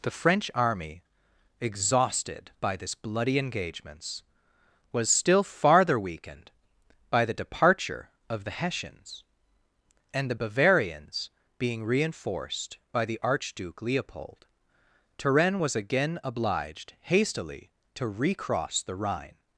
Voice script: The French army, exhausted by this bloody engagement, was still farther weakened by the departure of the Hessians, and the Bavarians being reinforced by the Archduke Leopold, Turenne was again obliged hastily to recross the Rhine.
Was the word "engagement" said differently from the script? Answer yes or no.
yes